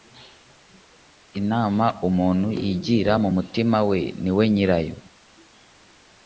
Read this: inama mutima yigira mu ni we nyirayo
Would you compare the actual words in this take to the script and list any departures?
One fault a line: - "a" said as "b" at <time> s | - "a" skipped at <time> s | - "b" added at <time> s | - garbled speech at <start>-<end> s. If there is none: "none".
- "mutima" said as "umuntu" at 2.1 s
- "mutima we" added at 3.3 s